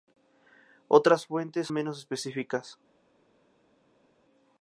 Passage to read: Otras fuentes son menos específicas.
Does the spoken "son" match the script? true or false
false